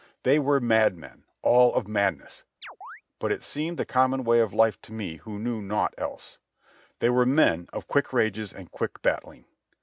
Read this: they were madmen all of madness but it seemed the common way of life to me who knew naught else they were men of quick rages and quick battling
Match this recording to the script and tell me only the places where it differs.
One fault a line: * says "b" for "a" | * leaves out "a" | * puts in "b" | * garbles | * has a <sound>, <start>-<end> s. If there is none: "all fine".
* has a chirp, 2.6-3.0 s